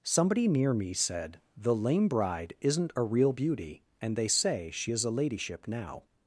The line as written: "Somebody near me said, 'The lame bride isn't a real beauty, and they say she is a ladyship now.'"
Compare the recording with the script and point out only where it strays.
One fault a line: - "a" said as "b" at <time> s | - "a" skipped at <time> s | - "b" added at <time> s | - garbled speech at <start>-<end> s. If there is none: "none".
none